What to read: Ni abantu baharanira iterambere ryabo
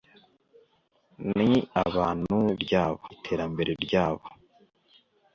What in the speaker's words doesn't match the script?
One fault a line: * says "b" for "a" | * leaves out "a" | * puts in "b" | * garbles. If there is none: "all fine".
* says "ryabo" for "baharanira"